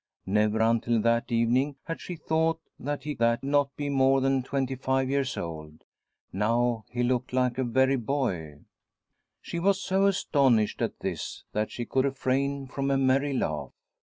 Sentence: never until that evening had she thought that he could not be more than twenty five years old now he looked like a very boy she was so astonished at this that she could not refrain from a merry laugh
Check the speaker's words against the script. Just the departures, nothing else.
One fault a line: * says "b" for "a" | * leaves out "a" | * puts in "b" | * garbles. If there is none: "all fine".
* says "that" for "could"
* leaves out "not"